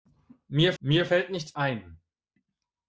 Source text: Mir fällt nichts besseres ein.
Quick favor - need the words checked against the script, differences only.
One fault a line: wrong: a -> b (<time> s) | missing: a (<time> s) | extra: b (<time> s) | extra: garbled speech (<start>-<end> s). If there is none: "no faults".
extra: mir (0.8 s)
missing: besseres (1.5 s)